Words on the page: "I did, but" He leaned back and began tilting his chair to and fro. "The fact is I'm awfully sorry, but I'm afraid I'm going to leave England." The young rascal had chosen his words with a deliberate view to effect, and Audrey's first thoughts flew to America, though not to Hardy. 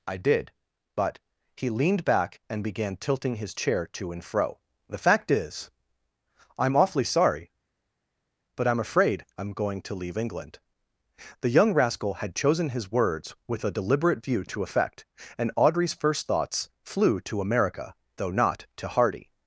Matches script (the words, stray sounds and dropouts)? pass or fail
pass